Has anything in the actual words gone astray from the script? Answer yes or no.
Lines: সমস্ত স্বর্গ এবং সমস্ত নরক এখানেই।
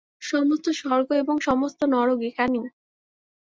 no